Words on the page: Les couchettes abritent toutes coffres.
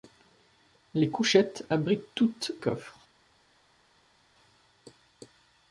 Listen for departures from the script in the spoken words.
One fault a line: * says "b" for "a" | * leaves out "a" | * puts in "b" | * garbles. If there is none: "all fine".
all fine